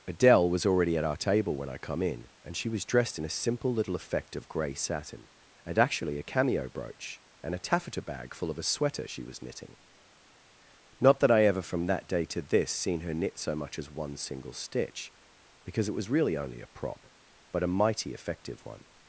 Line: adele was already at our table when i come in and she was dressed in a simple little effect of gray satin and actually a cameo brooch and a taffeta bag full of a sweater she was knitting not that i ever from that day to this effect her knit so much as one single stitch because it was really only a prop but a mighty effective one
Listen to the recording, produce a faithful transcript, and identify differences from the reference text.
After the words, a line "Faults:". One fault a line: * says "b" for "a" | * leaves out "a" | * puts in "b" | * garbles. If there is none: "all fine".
adele was already at our table when i come in and she was dressed in a simple little effect of gray satin and actually a cameo brooch and a taffeta bag full of a sweater she was knitting not that i ever from that day to this seen her knit so much as one single stitch because it was really only a prop but a mighty effective one
Faults:
* says "seen" for "effect"